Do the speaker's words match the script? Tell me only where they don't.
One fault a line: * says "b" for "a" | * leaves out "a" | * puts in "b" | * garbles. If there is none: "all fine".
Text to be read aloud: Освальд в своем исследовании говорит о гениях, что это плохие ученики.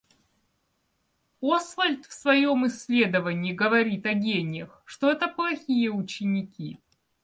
all fine